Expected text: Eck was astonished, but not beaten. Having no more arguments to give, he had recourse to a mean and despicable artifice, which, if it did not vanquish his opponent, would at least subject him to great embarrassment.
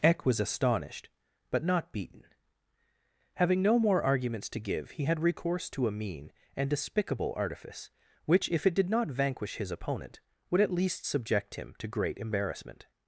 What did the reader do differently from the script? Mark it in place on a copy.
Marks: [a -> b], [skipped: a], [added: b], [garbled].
Eck was astonished, but not beaten. Having no more arguments to give, he had recourse to a mean and despicable artifice, which, if it did not vanquish his opponent, would at least subject him to great embarrassment.